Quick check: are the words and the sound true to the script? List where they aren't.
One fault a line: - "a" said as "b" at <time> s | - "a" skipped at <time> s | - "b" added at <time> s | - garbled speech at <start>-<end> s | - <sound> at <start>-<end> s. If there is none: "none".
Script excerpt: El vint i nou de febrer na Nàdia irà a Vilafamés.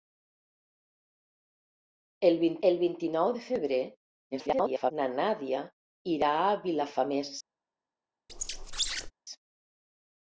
- "el vint" added at 2.7 s
- garbled speech at 4.3-4.9 s
- squeak at 8.3-9.1 s